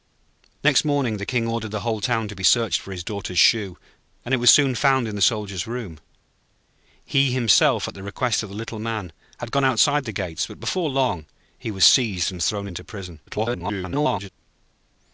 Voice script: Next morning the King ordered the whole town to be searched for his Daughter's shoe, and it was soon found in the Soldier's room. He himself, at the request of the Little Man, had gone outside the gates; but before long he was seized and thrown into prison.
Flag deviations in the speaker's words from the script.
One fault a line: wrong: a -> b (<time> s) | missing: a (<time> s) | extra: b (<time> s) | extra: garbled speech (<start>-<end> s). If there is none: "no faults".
extra: garbled speech (13.3-14.3 s)